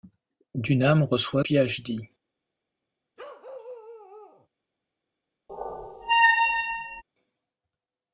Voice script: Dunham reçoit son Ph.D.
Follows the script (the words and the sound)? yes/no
no